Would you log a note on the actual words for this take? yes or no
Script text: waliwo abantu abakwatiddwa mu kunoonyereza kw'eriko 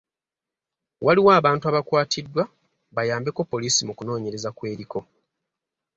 yes